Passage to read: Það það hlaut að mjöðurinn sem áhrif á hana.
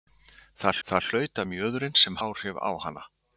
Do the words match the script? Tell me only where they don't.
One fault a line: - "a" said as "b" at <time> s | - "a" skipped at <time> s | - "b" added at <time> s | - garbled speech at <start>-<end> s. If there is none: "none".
none